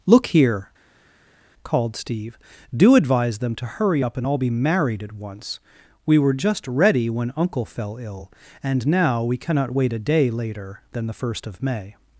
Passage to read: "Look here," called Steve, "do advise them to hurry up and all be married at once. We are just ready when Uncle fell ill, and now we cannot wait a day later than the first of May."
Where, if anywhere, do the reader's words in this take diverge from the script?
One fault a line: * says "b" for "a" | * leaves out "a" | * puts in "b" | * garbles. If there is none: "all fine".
* says "were" for "are"